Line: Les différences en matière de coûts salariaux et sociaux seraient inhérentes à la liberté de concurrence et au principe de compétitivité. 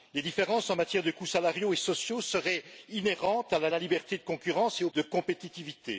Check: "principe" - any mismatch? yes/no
yes